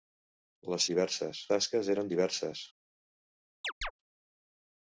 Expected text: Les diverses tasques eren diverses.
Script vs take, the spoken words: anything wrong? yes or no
no